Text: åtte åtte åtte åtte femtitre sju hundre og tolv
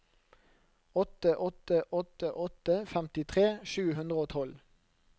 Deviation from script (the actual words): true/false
false